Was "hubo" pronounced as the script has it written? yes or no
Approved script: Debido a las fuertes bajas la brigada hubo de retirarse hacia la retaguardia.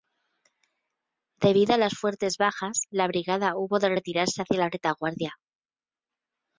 yes